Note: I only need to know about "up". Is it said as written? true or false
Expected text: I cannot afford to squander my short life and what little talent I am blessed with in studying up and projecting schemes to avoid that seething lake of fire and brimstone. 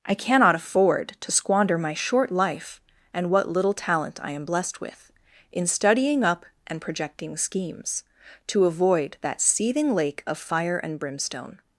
true